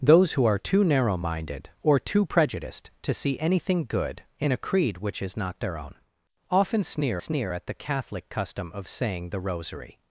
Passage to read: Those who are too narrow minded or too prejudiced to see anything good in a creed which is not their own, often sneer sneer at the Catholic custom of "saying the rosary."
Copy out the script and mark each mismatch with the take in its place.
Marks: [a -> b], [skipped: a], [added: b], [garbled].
Those who are too narrow minded or too prejudiced to see anything good in a creed which is not their own, often sneer sneer at the Catholic custom of "saying the rosary."